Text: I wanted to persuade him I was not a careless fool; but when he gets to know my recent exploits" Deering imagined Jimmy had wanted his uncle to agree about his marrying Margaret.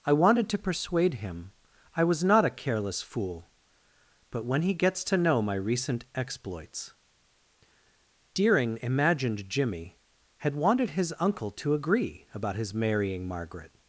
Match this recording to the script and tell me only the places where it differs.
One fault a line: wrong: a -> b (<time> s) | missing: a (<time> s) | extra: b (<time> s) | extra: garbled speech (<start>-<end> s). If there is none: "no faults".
no faults